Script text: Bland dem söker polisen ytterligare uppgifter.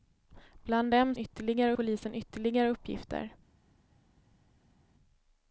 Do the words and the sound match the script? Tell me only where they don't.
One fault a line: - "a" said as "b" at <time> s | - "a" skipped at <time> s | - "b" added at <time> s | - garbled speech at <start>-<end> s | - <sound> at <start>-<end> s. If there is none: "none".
- "söker" said as "ytterligare" at 1.2 s